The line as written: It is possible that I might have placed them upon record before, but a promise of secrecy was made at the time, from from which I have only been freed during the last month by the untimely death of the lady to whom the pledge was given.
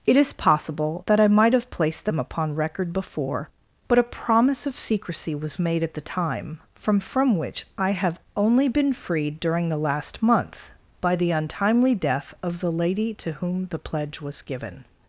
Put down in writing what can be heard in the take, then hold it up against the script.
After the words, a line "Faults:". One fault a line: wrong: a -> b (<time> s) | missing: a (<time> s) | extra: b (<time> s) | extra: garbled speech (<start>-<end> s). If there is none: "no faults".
It is possible that I might have placed them upon record before, but a promise of secrecy was made at the time, from from which I have only been freed during the last month by the untimely death of the lady to whom the pledge was given.
Faults:
no faults